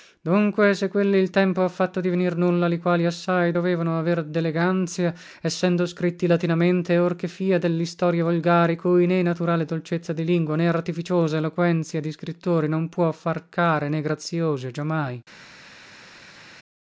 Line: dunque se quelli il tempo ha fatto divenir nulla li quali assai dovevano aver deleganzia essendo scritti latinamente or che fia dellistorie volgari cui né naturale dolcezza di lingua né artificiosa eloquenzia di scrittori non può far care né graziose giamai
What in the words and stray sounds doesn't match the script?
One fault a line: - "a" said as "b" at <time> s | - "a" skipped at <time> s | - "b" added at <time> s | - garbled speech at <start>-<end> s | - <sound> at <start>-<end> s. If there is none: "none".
none